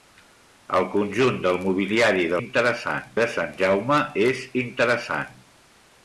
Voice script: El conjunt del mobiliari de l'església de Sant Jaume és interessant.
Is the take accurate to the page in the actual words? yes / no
no